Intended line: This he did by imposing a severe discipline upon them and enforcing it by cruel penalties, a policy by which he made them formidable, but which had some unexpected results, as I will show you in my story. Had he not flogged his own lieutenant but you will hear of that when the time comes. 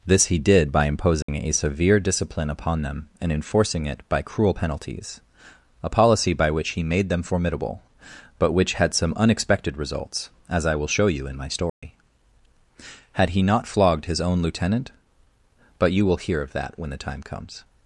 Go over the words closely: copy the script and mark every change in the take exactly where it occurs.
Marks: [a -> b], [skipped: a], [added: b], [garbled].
This he did by imposing a severe discipline upon them and enforcing it by cruel penalties, a policy by which he made them formidable, but which had some unexpected results, as I will show you in my story. Had he not flogged his own lieutenant but you will hear of that when the time comes.